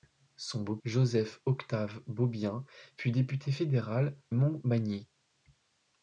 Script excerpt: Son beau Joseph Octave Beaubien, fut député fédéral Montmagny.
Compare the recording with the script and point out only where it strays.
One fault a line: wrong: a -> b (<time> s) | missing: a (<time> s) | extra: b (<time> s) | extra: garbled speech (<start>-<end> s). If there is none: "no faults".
no faults